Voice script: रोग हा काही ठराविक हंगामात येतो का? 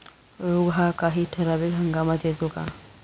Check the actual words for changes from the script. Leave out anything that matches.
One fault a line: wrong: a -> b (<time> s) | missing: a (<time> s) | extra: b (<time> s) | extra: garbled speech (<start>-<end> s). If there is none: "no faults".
no faults